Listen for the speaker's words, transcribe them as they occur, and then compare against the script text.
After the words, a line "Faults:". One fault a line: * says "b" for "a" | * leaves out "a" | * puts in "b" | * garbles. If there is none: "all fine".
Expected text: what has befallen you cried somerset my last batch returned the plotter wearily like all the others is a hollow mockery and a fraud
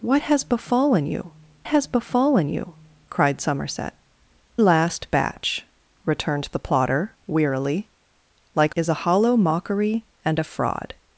what has befallen you has befallen you cried somerset last batch returned the plotter wearily like is a hollow mockery and a fraud
Faults:
* puts in "has befallen you"
* leaves out "my"
* leaves out "all the others"